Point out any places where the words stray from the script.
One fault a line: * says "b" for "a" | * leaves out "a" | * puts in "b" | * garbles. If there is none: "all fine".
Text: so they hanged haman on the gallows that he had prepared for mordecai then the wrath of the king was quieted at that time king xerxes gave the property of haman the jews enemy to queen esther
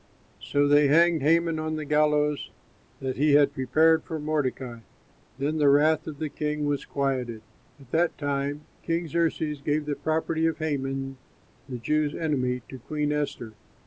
all fine